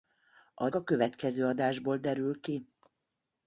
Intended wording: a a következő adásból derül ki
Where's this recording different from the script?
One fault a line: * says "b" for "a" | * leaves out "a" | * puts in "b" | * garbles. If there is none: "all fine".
all fine